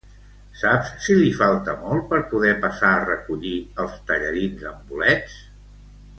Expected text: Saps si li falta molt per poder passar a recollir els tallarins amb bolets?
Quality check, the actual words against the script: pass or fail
pass